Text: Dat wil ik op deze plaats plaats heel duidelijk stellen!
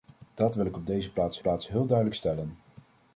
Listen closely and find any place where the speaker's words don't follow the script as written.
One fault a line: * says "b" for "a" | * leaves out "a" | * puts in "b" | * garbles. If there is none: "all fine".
all fine